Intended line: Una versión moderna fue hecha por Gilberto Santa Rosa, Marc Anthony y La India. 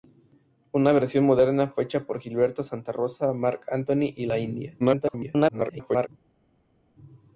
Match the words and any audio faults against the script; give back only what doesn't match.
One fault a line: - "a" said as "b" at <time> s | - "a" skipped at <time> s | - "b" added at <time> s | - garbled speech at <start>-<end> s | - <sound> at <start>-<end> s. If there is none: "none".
- garbled speech at 4.8-6.1 s